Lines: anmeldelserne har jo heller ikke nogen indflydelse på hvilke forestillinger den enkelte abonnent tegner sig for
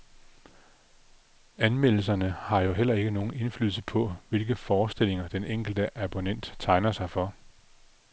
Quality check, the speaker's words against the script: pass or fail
pass